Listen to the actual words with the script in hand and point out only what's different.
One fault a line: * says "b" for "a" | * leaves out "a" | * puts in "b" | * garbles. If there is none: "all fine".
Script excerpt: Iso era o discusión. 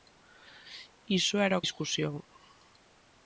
all fine